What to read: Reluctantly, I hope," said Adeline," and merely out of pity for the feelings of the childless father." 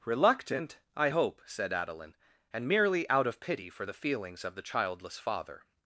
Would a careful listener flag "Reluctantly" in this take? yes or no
yes